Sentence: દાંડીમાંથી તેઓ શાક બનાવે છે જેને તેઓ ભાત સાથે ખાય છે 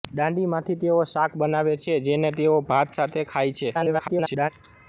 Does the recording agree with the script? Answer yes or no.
no